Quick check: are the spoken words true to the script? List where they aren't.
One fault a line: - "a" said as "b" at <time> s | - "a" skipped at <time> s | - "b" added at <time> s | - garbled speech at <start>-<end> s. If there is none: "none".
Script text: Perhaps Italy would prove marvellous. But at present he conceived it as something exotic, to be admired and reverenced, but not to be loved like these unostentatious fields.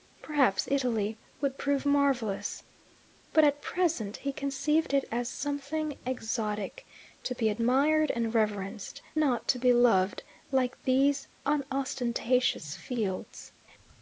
- "but" skipped at 9.0 s